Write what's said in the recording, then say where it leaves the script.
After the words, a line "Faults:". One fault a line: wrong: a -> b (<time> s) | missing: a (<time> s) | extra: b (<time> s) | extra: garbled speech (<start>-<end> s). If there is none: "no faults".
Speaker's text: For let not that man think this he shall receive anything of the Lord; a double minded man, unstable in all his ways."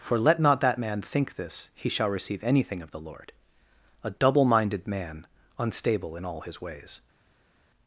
For let not that man think this he shall receive anything of the Lord; a double minded man, unstable in all his ways."
Faults:
no faults